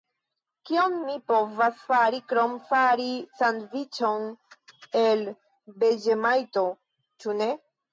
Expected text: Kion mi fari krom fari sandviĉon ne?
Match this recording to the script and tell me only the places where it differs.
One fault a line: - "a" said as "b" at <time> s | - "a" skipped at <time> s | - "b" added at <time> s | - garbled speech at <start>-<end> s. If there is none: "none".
- "povas" added at 1.3 s
- "el veĝemajto ĉu" added at 5.0 s